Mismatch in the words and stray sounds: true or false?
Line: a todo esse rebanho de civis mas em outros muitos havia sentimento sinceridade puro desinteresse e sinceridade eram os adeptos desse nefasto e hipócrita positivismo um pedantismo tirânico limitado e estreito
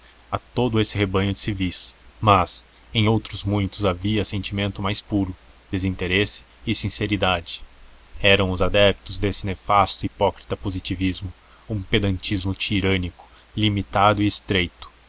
true